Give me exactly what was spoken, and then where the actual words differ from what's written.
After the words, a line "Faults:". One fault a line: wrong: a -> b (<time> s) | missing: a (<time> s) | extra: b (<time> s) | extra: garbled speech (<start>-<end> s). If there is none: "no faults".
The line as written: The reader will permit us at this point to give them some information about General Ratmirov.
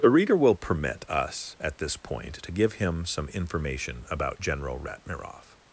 The reader will permit us at this point to give him some information about General Ratmirov.
Faults:
wrong: them -> him (2.7 s)